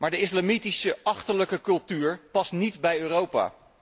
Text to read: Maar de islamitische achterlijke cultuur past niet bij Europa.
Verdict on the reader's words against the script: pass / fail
pass